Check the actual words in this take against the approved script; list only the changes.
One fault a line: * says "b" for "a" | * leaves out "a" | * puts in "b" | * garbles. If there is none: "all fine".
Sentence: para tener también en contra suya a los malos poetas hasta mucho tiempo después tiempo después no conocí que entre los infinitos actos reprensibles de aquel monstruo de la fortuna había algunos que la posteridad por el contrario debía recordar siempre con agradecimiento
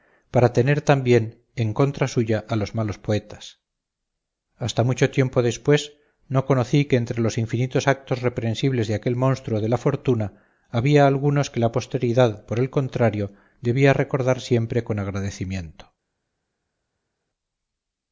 * leaves out "tiempo después"